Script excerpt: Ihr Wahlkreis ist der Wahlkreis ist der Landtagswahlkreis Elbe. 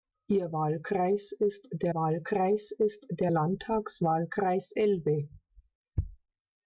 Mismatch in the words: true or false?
false